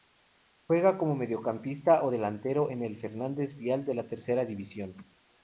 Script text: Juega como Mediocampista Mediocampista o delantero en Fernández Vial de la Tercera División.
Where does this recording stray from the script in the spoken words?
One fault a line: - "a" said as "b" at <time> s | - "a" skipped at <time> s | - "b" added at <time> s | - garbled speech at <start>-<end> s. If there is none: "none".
- "Mediocampista" skipped at 2.0 s
- "el" added at 2.8 s